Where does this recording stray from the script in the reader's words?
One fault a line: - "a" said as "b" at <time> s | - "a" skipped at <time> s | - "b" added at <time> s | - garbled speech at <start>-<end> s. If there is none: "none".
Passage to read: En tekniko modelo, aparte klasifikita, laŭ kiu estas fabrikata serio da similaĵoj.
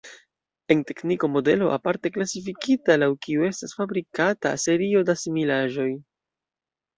none